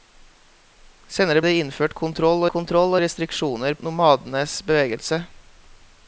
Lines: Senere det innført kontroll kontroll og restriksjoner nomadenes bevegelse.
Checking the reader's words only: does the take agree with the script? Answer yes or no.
yes